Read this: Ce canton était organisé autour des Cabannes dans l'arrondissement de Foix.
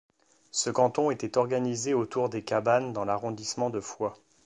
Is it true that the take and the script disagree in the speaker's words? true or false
false